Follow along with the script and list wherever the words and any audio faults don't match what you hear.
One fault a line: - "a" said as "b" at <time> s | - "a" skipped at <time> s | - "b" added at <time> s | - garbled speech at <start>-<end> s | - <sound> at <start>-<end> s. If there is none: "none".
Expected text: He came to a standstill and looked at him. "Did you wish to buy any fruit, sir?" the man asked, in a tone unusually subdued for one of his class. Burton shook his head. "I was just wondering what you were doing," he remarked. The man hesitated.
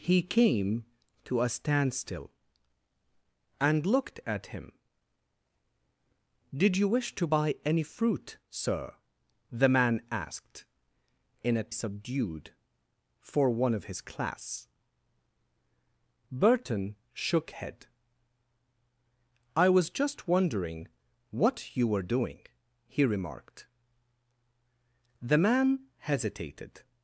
- "tone unusually" skipped at 11.7 s
- "his" skipped at 17.5 s